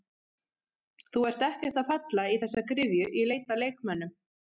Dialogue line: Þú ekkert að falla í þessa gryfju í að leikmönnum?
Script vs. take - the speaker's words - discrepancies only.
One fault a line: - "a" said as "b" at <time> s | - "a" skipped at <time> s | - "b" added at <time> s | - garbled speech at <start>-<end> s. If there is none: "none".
- "ert" added at 1.3 s
- "leit" added at 3.3 s